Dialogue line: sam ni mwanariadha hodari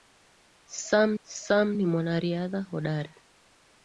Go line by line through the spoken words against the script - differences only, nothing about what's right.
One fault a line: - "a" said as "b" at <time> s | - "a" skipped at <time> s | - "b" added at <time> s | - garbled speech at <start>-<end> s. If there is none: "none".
- "sam" added at 1.2 s